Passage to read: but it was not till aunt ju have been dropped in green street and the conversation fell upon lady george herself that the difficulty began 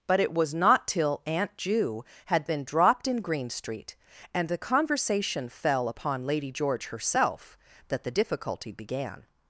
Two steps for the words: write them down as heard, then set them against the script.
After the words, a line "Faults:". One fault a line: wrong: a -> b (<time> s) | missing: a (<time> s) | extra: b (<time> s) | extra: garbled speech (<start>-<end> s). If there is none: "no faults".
but it was not till aunt ju had been dropped in green street and the conversation fell upon lady george herself that the difficulty began
Faults:
wrong: have -> had (2.2 s)